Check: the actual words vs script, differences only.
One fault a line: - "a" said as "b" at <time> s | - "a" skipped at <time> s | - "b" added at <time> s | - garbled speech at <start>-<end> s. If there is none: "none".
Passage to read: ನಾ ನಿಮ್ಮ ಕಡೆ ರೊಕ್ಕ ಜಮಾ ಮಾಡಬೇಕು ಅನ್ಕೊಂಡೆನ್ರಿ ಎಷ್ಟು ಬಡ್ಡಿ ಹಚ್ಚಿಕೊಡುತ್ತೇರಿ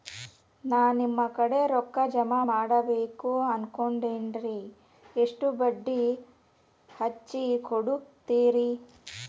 none